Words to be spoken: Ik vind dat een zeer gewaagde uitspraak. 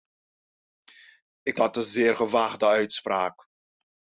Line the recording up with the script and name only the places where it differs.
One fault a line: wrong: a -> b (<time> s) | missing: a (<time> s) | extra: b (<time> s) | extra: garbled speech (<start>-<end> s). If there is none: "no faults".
missing: vind (1.6 s)